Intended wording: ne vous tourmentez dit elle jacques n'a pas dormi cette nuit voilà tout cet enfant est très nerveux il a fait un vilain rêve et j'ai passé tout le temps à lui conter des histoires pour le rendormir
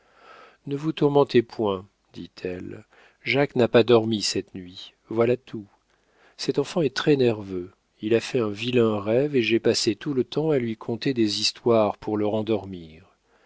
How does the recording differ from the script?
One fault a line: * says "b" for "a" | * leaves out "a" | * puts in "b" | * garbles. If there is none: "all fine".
* puts in "point"